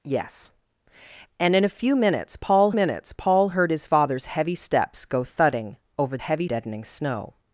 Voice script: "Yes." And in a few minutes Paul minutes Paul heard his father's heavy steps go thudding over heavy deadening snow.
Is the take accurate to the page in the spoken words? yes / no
yes